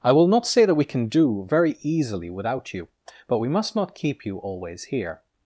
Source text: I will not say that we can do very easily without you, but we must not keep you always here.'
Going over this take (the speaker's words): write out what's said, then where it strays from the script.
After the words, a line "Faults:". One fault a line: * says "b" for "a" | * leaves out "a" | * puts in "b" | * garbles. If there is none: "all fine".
I will not say that we can do very easily without you, but we must not keep you always here.'
Faults:
all fine